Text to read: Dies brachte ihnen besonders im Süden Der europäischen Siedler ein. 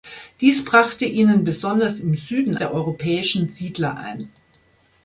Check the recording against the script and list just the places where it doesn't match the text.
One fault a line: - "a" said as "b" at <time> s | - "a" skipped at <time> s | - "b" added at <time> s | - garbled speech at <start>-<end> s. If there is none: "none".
none